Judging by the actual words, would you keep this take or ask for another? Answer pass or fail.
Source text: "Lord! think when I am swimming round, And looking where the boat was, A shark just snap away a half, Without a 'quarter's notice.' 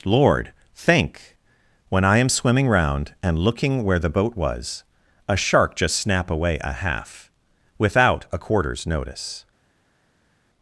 pass